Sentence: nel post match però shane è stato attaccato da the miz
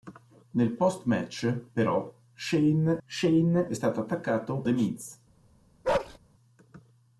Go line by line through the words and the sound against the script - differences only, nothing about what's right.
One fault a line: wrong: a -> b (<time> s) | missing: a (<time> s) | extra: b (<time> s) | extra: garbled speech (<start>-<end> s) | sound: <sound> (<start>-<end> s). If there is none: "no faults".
extra: shane (3.0 s)
missing: da (4.7 s)
sound: bark (5.8-6.2 s)